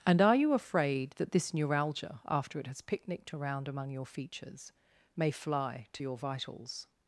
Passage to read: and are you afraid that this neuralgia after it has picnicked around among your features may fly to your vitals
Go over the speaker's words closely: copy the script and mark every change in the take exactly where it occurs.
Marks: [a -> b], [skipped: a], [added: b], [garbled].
and are you afraid that this neuralgia after it has picnicked around among your features may fly to your vitals